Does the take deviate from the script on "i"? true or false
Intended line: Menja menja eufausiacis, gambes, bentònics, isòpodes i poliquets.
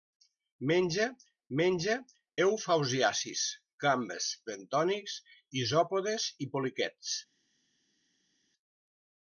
false